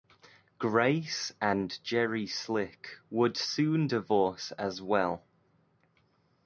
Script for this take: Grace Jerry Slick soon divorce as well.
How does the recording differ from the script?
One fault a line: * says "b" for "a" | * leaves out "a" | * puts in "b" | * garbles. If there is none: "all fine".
* puts in "and"
* puts in "would"